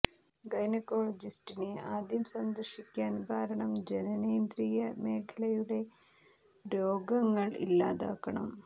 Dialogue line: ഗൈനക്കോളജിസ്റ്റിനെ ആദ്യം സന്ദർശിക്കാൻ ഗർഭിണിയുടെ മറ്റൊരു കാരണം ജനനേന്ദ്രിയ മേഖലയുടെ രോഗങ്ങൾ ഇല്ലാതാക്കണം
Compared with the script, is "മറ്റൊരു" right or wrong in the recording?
wrong